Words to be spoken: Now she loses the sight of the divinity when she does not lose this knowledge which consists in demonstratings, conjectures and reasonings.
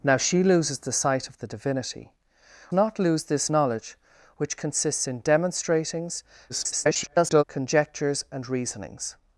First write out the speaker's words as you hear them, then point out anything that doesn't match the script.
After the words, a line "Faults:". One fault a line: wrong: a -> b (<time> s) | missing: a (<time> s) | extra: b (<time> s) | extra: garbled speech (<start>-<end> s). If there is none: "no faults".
Now she loses the sight of the divinity not lose this knowledge which consists in demonstratings, [garbled] conjectures and reasonings.
Faults:
missing: when she does (2.1 s)
extra: garbled speech (6.5-7.4 s)